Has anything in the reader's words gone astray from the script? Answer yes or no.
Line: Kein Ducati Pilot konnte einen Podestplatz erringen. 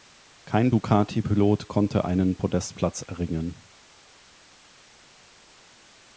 no